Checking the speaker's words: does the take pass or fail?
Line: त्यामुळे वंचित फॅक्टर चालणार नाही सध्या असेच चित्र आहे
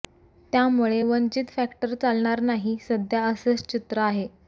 pass